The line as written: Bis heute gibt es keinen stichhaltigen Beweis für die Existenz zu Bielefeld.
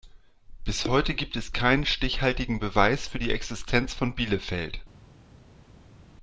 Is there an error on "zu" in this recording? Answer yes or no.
yes